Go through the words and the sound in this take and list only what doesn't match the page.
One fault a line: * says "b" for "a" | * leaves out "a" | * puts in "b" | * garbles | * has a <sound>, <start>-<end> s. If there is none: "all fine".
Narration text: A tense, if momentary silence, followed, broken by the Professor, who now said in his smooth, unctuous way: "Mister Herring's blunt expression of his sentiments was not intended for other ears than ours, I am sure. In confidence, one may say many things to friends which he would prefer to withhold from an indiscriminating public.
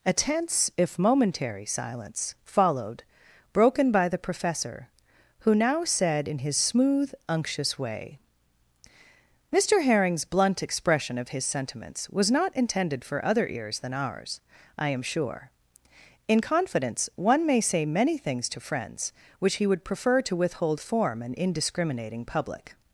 * says "form" for "from"